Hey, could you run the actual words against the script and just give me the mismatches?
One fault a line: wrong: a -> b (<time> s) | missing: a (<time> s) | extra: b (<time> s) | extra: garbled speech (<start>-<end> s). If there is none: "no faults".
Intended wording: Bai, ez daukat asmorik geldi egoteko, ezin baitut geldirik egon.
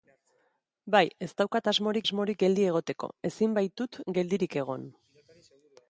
extra: asmorik (2.0 s)